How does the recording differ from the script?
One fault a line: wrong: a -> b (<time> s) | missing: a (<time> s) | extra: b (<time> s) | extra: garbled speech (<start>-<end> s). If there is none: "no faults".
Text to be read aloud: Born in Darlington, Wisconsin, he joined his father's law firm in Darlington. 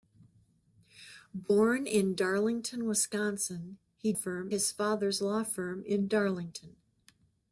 wrong: joined -> firm (4.1 s)